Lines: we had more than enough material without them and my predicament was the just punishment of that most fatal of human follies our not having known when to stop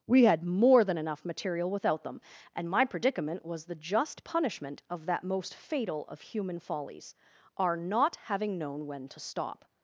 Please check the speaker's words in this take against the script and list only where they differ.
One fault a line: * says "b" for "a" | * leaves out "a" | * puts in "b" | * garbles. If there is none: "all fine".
all fine